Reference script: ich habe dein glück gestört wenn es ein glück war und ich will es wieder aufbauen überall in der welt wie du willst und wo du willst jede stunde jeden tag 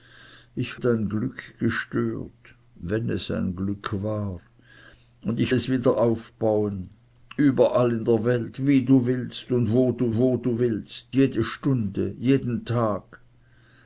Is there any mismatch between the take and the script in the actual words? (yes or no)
yes